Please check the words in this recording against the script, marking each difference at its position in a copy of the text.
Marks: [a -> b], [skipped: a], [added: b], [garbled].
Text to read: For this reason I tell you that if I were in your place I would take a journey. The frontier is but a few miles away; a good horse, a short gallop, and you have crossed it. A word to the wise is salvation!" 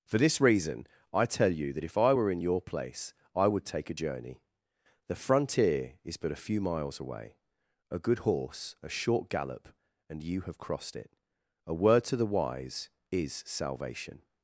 For this reason I tell you that if I were in your place I would take a journey. The frontier is but a few miles away; a good horse, a short gallop, and you have crossed it. A word to the wise is salvation!"